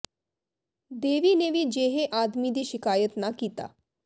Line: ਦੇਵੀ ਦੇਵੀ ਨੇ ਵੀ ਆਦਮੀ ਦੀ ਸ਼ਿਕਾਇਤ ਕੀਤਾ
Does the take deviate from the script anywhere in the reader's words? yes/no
yes